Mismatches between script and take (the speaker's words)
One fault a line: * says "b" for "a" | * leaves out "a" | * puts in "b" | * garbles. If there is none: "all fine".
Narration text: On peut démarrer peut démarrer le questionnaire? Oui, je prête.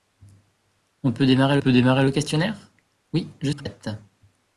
all fine